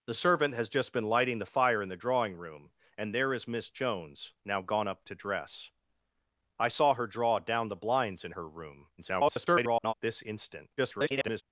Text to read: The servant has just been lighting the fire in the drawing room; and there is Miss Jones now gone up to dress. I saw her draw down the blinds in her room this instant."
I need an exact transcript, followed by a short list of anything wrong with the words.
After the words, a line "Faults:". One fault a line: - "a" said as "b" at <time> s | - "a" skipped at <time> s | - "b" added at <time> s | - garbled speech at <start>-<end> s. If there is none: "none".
The servant has just been lighting the fire in the drawing room; and there is Miss Jones now gone up to dress. I saw her draw down the blinds in her room [garbled] this instant." [garbled]
Faults:
- garbled speech at 9.0-9.9 s
- garbled speech at 10.8-11.4 s